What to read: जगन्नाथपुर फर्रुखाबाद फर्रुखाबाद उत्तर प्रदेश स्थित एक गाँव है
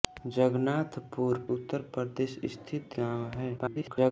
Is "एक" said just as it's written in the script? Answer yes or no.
no